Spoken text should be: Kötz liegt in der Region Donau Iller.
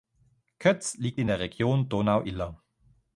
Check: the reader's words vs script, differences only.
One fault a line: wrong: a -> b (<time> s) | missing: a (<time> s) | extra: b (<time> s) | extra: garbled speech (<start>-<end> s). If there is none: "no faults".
no faults